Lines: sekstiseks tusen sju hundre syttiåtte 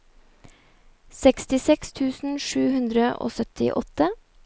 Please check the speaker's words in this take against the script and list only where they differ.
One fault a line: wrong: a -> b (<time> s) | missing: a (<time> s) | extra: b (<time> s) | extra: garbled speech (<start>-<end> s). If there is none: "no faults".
extra: og (3.3 s)